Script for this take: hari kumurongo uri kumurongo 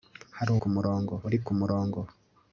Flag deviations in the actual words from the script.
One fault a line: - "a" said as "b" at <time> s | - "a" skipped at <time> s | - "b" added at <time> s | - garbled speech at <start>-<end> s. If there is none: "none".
none